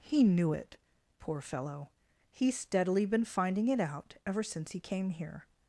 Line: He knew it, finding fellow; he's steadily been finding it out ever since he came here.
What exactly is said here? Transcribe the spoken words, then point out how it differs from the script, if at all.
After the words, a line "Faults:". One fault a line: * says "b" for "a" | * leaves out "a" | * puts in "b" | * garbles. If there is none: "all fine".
He knew it, poor fellow; he's steadily been finding it out ever since he came here.
Faults:
* says "poor" for "finding"